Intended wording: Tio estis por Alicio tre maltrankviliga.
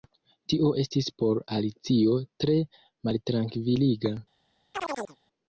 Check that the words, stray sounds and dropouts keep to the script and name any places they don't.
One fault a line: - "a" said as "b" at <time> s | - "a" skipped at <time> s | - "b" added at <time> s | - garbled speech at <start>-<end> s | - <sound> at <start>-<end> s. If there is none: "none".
- chirp at 4.7-5.2 s